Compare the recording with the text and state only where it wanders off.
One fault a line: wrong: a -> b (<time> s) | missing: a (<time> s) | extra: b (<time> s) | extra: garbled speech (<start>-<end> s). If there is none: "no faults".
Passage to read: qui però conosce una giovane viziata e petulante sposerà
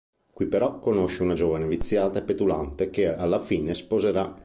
extra: che alla fine (2.9 s)